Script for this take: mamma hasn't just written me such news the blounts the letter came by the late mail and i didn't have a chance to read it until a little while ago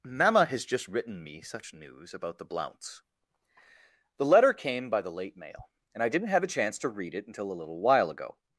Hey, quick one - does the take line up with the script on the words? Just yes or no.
no